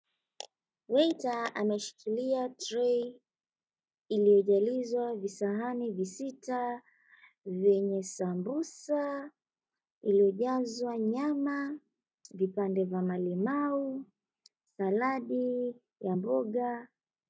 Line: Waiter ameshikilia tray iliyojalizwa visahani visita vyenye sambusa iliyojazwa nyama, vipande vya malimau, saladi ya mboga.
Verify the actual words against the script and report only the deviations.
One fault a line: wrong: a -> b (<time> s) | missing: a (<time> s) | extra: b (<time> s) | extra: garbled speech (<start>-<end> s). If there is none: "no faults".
no faults